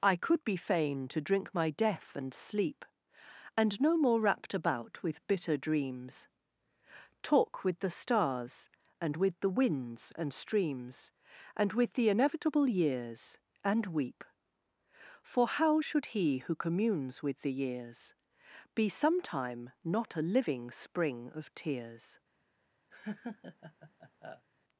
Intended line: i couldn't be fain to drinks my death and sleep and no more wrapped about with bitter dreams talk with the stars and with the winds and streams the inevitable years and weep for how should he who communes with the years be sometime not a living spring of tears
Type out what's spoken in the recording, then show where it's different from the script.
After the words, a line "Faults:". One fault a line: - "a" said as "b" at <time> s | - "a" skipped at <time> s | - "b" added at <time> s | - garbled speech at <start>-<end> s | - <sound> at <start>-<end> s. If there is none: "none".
i could be fain to drink my death and sleep and no more wrapped about with bitter dreams talk with the stars and with the winds and streams and with the inevitable years and weep for how should he who communes with the years be sometime not a living spring of tears
Faults:
- "couldn't" said as "could" at 0.1 s
- "drinks" said as "drink" at 1.2 s
- "and with" added at 11.6 s
- laugh at 22.9-24.5 s